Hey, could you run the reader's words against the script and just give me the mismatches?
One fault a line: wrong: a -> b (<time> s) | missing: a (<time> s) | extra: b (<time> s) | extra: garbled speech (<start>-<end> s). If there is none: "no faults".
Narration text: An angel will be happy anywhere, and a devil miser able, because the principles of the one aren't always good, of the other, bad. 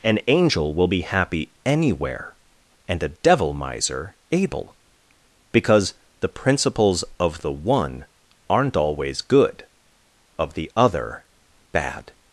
no faults